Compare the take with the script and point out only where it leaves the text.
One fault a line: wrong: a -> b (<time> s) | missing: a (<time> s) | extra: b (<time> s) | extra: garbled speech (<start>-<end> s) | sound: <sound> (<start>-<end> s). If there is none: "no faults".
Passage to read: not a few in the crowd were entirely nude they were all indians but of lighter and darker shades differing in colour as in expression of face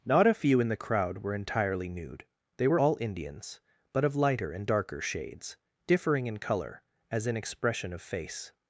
no faults